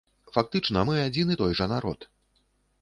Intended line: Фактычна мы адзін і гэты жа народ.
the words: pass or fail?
fail